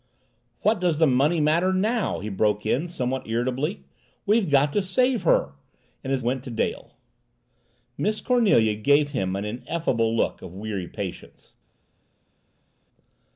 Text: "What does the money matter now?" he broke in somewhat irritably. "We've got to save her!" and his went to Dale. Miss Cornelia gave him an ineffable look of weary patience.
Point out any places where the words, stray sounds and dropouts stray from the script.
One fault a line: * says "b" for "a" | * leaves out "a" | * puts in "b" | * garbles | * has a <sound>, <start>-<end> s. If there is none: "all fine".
all fine